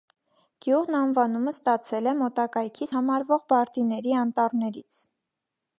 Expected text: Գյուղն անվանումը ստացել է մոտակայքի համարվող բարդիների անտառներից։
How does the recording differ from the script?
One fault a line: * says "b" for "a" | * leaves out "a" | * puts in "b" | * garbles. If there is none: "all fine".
all fine